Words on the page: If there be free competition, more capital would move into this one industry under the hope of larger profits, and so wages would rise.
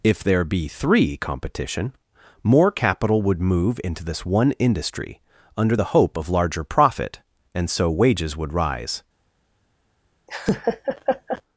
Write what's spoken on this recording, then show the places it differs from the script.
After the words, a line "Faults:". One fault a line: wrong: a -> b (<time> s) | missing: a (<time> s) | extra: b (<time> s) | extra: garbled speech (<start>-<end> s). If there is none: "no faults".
If there be three competition, more capital would move into this one industry under the hope of larger profit, and so wages would rise.
Faults:
wrong: free -> three (0.7 s)
wrong: profits -> profit (6.7 s)